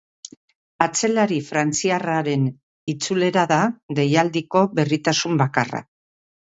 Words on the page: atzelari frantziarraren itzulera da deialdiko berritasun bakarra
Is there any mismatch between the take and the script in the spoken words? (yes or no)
no